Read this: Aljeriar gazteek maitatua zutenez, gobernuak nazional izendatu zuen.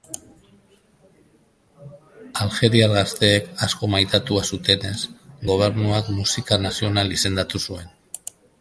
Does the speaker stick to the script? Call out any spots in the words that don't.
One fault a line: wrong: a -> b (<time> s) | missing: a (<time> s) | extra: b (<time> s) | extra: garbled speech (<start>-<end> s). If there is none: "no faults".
extra: asko (3.7 s)
extra: musika (6.2 s)